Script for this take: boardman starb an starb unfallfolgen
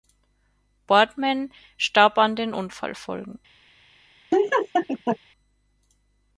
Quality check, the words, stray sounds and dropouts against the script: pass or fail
fail